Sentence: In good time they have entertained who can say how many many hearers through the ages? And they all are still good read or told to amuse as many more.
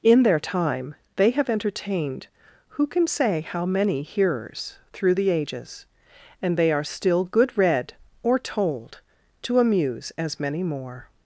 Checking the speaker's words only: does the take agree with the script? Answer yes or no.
no